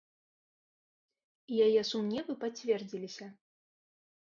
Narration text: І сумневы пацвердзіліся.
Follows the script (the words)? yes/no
no